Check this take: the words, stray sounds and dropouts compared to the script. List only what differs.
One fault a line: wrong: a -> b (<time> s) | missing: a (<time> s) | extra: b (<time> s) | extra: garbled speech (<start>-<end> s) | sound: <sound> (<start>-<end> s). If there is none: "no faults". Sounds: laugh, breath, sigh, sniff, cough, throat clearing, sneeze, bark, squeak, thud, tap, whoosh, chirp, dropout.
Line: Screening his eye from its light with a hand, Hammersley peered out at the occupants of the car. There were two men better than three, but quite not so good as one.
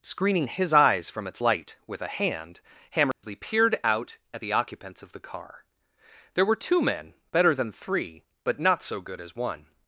wrong: eye -> eyes (0.7 s)
sound: dropout (3.1-3.2 s)
missing: quite (8.6 s)